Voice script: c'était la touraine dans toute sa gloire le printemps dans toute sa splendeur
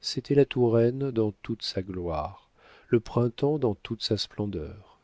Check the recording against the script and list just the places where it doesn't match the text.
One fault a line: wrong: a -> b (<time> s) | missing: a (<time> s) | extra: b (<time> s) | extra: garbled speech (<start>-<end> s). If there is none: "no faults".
no faults